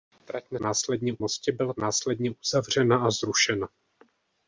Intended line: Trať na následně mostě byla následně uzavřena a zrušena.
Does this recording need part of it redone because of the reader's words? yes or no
no